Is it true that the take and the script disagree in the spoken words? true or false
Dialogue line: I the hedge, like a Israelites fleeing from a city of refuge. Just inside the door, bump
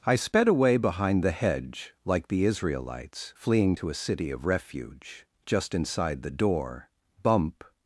true